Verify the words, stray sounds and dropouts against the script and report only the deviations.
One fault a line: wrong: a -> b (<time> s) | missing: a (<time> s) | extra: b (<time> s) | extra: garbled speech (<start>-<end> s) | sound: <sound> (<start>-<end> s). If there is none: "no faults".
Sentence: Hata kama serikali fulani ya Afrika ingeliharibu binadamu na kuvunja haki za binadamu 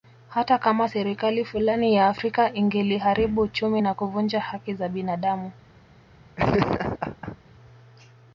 wrong: binadamu -> uchumi (3.4 s)
sound: laugh (6.4-7.4 s)